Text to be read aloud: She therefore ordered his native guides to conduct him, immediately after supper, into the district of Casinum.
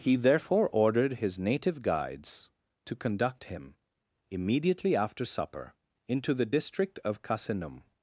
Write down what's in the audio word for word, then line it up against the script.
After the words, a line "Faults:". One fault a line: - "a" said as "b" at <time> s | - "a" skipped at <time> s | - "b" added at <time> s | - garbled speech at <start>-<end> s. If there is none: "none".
He therefore ordered his native guides to conduct him, immediately after supper, into the district of Casinum.
Faults:
- "She" said as "He" at 0.0 s